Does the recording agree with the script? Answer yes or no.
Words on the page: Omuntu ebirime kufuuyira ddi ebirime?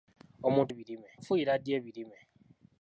yes